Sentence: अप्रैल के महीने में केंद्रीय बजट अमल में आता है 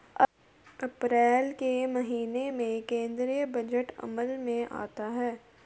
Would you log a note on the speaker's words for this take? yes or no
no